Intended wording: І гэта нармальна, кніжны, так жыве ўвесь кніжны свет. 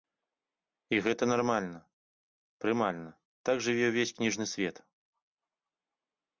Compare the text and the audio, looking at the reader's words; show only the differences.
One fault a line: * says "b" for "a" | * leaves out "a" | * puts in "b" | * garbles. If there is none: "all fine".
* says "прымальна" for "кніжны"